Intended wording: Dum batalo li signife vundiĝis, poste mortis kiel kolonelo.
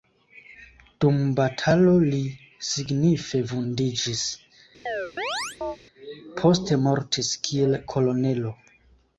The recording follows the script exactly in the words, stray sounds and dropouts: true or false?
false